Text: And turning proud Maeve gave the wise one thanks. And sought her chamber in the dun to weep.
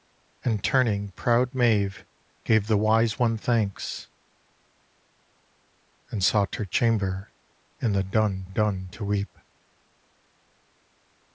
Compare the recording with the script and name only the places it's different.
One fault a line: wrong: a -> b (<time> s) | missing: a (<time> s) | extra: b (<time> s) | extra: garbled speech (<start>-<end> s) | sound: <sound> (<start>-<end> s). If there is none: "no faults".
extra: dun (8.5 s)